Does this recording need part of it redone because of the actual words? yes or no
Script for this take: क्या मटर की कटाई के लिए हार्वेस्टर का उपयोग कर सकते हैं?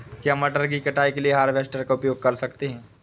no